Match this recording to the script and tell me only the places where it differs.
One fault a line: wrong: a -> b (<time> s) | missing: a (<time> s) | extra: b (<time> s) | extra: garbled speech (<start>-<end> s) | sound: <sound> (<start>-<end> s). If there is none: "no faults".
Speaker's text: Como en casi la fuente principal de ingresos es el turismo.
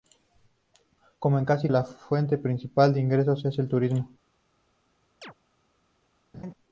sound: chirp (5.2-5.3 s)
sound: laugh (6.3-6.5 s)